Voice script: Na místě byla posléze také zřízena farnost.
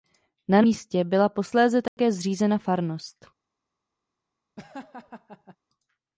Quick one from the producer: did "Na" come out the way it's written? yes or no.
yes